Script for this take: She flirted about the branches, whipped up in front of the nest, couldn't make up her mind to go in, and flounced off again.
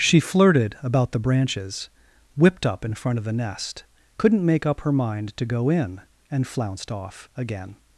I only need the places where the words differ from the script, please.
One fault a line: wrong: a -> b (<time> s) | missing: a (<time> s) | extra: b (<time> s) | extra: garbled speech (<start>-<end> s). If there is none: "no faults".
no faults